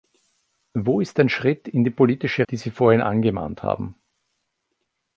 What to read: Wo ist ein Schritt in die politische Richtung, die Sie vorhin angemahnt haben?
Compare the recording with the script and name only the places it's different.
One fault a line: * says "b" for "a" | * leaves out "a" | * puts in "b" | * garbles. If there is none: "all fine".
* leaves out "Richtung"